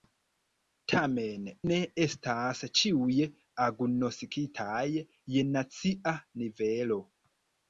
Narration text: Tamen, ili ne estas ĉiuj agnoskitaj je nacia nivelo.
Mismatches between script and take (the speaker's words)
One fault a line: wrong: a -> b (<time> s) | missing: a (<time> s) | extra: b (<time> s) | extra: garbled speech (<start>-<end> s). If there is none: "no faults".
missing: ili (1.4 s)